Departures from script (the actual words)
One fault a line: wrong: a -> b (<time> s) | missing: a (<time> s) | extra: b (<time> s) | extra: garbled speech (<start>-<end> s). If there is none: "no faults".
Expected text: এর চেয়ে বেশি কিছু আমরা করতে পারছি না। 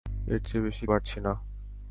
missing: কিছু আমরা করতে (0.8 s)